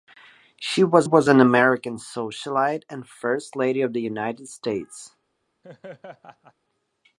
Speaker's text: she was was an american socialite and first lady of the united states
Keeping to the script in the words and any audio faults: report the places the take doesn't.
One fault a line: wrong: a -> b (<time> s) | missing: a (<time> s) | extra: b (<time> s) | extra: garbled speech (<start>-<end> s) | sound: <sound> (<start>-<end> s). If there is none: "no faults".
sound: laugh (5.6-6.5 s)